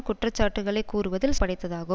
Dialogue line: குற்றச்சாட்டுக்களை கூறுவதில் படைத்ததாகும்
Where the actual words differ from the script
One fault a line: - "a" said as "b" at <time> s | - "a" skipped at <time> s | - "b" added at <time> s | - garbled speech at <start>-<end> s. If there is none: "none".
none